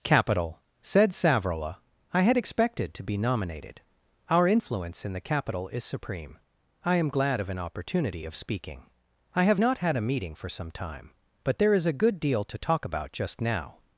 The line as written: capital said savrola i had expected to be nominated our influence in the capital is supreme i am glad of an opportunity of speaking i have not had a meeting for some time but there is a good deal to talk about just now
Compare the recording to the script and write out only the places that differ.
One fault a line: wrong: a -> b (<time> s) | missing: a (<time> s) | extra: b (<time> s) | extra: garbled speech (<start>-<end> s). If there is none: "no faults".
no faults